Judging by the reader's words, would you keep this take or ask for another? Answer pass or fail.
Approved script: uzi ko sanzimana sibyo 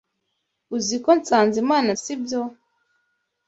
pass